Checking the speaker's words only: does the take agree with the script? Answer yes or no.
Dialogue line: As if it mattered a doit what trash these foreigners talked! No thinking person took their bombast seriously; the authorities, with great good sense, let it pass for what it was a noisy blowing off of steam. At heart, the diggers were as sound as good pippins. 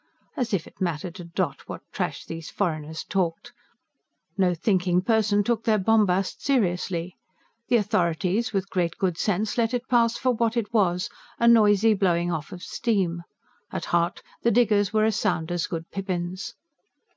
yes